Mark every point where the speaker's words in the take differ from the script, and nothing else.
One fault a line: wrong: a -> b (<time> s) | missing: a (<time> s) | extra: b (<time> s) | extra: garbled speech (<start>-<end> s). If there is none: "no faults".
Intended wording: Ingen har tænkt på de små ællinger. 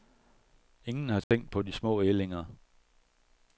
no faults